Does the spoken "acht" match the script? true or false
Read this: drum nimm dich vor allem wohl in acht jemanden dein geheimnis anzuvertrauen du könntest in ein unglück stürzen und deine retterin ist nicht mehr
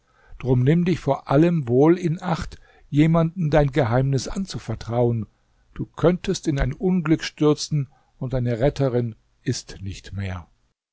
true